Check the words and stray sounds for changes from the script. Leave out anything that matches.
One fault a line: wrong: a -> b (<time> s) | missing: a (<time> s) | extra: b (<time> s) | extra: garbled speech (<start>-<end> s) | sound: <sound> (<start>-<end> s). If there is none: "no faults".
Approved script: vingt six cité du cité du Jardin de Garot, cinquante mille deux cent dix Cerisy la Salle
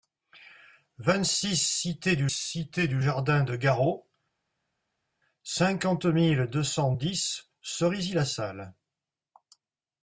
no faults